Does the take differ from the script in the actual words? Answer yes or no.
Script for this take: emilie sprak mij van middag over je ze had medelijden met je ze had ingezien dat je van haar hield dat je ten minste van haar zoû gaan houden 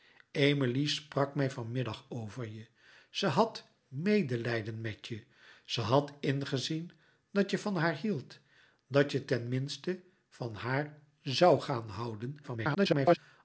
yes